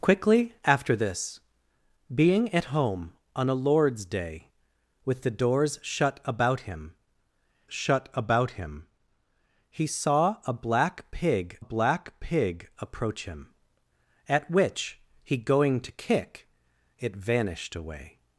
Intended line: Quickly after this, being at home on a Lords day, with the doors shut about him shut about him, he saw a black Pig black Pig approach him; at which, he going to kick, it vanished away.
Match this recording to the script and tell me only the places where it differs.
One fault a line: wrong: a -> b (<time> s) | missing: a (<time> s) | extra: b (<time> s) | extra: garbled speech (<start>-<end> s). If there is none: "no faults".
no faults